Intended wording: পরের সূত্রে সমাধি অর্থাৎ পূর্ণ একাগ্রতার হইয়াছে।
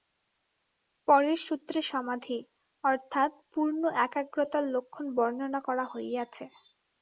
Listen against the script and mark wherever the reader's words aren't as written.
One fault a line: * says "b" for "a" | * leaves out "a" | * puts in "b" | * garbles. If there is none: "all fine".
* puts in "লক্ষণ বর্ণনা করা"